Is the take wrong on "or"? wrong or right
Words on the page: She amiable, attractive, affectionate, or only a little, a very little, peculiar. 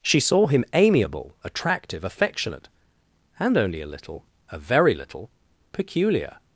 wrong